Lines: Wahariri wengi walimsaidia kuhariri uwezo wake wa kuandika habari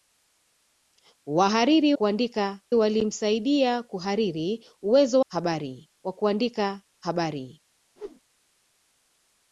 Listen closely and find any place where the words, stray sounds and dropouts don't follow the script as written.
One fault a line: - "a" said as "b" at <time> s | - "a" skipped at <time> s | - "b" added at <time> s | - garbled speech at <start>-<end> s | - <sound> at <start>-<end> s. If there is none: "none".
- "wengi" said as "kuandika" at 1.9 s
- "wake" said as "habari" at 5.3 s
- whoosh at 8.0-8.2 s